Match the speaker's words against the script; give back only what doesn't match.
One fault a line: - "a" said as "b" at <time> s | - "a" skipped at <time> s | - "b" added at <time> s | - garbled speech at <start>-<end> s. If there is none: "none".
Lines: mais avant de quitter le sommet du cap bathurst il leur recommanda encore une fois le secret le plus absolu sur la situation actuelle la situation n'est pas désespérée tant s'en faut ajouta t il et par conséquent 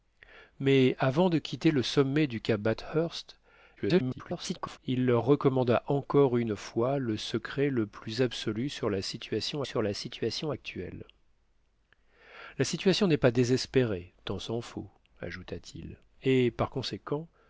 - garbled speech at 3.8-4.8 s
- "sur la situation" added at 9.6 s